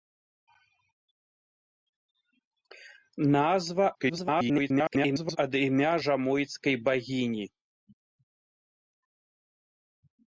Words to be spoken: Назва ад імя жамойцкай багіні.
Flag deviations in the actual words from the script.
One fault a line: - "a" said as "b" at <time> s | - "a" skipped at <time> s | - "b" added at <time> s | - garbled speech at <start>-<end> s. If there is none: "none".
- garbled speech at 3.9-5.4 s